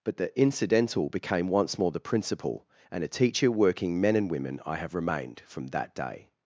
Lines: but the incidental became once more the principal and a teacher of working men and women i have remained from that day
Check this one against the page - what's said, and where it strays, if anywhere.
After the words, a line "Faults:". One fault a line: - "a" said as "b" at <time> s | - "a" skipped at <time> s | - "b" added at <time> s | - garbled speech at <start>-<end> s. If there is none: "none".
but the incidental became once more the principal and a teacher working men and women i have remained from that day
Faults:
- "of" skipped at 3.5 s